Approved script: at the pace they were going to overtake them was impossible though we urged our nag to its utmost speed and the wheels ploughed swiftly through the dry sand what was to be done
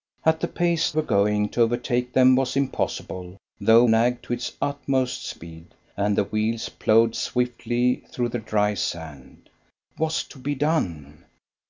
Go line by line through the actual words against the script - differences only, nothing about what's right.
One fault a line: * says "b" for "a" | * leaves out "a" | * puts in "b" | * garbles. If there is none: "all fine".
* leaves out "they"
* leaves out "we urged our"
* leaves out "what"